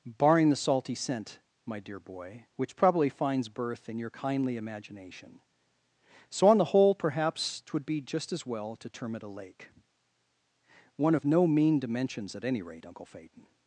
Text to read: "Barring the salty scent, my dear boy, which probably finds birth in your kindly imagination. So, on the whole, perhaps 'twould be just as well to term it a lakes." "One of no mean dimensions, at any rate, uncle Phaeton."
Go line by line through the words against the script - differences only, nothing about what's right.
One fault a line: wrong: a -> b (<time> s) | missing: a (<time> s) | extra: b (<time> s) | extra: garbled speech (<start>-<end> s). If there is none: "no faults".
wrong: lakes -> lake (9.3 s)